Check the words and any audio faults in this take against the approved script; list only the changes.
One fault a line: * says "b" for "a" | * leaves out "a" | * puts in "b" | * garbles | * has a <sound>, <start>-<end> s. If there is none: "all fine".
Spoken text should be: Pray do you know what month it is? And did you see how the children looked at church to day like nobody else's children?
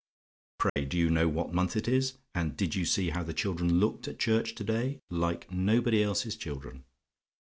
* has a dropout, 0.7-0.8 s